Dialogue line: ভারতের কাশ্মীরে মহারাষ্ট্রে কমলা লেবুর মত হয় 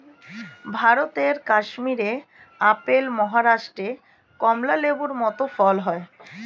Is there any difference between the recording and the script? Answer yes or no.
yes